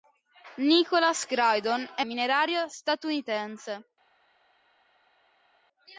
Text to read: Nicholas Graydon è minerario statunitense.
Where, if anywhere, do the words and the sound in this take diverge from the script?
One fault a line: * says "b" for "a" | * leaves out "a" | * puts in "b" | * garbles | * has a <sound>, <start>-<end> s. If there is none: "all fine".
all fine